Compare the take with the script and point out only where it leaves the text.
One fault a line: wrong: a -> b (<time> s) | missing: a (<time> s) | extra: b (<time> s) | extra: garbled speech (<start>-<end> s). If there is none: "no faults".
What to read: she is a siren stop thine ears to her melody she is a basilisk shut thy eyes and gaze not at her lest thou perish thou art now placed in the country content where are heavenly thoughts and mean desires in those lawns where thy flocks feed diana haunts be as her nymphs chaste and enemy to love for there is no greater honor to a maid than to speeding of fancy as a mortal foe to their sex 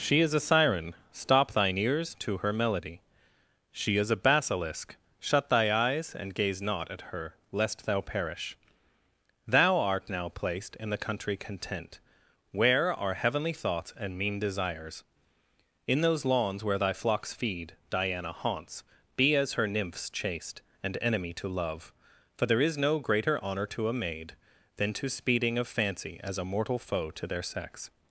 no faults